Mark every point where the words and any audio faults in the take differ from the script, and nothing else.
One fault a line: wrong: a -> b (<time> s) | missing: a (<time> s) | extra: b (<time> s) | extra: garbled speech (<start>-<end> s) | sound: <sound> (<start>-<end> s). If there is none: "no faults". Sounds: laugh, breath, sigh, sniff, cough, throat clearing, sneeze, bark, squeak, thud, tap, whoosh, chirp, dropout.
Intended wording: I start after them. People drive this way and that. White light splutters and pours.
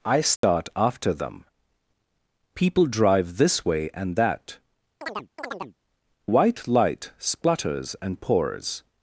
sound: dropout (0.4-0.4 s)
sound: chirp (5.0-5.8 s)